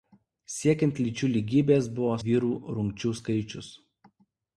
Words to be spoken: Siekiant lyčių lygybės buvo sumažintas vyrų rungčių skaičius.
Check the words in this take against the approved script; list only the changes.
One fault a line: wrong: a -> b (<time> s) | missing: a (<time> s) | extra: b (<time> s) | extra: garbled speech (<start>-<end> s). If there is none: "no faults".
missing: sumažintas (2.1 s)